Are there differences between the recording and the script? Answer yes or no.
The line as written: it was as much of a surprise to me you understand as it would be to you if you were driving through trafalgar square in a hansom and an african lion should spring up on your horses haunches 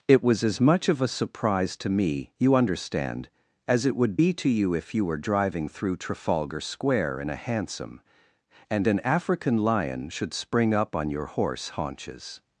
yes